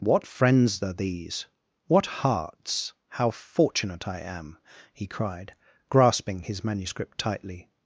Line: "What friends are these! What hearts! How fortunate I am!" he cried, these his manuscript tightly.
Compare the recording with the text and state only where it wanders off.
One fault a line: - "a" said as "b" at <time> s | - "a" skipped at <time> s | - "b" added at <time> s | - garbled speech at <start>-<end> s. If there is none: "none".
- "these" said as "grasping" at 5.9 s